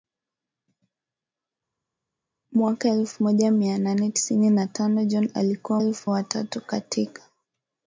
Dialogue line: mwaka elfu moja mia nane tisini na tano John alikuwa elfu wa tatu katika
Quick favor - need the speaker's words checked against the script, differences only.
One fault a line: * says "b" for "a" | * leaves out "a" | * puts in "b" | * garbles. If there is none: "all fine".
all fine